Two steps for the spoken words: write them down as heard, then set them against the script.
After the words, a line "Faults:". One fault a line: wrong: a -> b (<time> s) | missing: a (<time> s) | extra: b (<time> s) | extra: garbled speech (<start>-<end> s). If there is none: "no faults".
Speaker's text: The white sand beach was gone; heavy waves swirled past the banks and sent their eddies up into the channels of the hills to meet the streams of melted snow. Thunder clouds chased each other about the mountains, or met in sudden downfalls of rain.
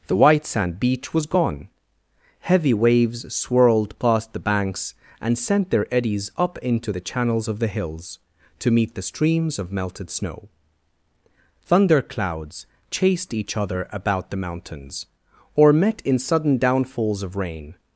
The white sand beach was gone; heavy waves swirled past the banks and sent their eddies up into the channels of the hills to meet the streams of melted snow. Thunder clouds chased each other about the mountains, or met in sudden downfalls of rain.
Faults:
no faults